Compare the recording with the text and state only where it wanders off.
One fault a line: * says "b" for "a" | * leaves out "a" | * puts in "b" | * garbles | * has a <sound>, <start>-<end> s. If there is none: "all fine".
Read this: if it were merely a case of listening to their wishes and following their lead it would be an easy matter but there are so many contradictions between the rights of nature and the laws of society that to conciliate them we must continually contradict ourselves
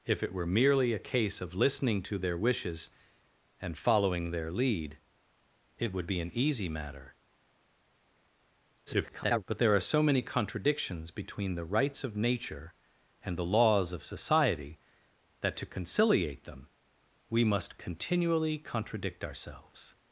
* garbles